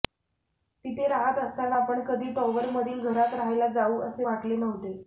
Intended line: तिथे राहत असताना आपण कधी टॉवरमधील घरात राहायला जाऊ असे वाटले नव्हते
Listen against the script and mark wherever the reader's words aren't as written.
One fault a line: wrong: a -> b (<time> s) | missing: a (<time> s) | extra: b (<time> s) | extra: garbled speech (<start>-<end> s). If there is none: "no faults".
no faults